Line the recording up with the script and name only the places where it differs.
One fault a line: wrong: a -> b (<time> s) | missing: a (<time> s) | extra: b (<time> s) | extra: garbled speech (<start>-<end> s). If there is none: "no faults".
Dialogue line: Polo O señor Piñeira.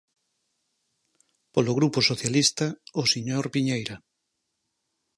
extra: Grupo Socialista (1.8 s)